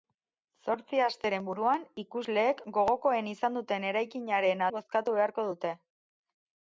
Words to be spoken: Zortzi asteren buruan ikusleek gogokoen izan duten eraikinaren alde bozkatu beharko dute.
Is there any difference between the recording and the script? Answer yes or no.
yes